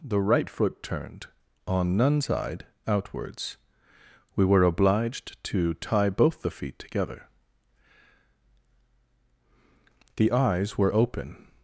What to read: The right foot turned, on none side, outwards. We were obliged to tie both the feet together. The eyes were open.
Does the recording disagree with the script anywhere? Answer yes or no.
no